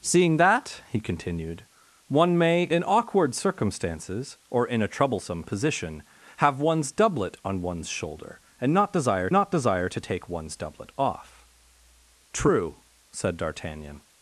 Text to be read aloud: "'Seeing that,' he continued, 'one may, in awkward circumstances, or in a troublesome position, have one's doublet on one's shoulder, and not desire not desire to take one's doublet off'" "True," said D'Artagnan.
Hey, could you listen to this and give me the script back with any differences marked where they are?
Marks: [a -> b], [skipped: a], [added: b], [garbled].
"'Seeing that,' he continued, 'one may, in awkward circumstances, or in a troublesome position, have one's doublet on one's shoulder, and not desire not desire to take one's doublet off'" "True," said D'Artagnan.